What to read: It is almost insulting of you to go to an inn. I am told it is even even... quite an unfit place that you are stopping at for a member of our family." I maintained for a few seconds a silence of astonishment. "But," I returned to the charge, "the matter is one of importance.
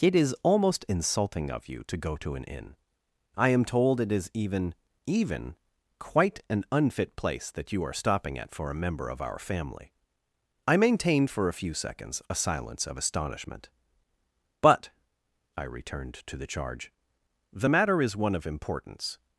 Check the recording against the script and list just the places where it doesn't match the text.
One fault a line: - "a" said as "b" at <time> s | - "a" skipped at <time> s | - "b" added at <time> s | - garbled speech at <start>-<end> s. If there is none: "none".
none